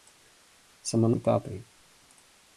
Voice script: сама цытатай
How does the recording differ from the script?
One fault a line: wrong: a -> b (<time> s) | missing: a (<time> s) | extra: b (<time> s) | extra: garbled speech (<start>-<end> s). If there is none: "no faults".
no faults